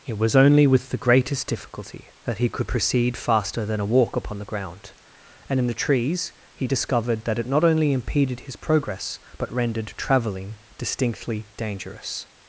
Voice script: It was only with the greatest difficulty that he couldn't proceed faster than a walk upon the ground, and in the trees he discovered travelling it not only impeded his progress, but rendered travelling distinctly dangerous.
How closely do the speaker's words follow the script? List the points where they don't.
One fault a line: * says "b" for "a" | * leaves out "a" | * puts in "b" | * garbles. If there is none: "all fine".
* says "could" for "couldn't"
* says "that" for "travelling"